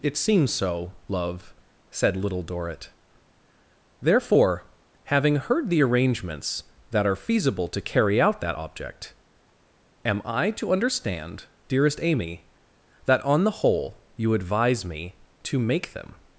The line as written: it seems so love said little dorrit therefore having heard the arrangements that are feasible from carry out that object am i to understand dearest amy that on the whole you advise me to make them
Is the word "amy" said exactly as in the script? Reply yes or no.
yes